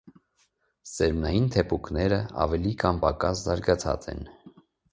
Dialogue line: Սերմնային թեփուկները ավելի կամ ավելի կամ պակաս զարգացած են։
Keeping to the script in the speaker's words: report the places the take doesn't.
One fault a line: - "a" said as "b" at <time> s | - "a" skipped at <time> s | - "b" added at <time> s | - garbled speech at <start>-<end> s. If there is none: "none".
- "ավելի կամ" skipped at 3.0 s